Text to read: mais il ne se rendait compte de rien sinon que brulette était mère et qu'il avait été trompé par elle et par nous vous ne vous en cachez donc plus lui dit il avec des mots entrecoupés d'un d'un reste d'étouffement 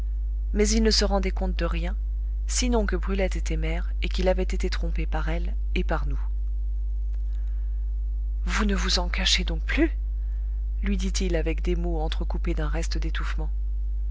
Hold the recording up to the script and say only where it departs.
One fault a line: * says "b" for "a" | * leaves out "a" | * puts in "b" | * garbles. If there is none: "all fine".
* leaves out "d'un"